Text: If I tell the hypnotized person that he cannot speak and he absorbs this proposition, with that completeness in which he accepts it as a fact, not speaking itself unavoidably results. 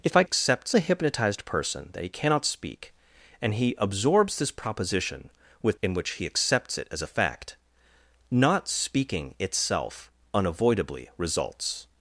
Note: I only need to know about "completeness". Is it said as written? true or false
false